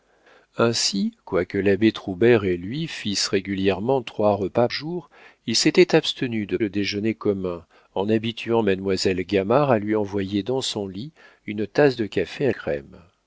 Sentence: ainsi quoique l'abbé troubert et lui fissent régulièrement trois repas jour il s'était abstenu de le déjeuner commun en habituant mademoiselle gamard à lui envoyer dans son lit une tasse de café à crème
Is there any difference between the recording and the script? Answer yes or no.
no